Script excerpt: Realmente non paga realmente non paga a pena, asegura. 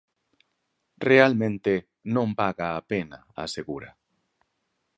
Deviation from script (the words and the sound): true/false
true